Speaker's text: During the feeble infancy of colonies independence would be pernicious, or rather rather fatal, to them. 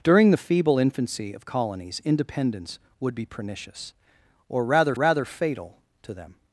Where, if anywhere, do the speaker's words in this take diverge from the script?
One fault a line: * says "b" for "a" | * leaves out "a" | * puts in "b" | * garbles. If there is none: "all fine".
all fine